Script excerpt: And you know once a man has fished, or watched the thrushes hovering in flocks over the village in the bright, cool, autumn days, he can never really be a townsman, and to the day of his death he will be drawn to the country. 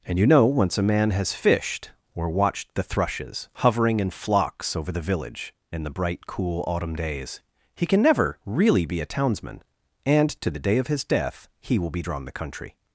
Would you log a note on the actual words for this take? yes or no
yes